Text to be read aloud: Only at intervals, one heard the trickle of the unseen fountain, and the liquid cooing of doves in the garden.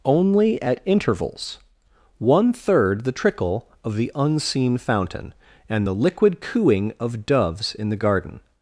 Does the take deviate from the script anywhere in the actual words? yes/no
yes